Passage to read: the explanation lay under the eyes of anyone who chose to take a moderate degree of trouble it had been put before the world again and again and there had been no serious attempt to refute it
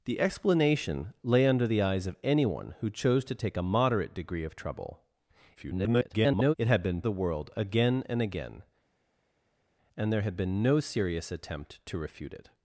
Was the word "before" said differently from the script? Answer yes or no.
yes